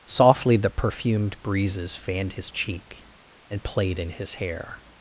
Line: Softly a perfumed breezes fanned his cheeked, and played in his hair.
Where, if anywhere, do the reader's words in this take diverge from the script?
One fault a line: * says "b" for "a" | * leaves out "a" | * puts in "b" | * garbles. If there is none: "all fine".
* says "the" for "a"
* says "cheek" for "cheeked"